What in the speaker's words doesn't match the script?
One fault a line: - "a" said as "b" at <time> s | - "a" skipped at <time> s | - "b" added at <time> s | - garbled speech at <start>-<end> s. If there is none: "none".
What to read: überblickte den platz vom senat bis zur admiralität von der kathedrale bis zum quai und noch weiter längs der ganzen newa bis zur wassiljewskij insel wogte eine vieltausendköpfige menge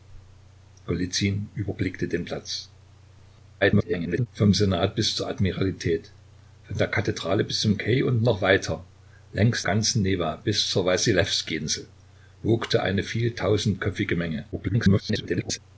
- garbled speech at 3.6-4.3 s
- "der" skipped at 9.6 s
- garbled speech at 14.5-15.6 s